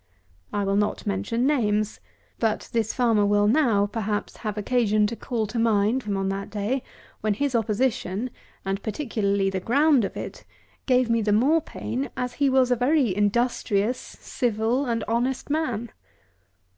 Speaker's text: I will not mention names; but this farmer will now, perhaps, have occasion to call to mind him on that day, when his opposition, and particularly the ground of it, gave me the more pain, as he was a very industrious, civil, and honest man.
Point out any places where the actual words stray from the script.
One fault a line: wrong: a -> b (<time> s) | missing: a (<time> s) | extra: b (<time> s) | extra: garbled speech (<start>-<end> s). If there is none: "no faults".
no faults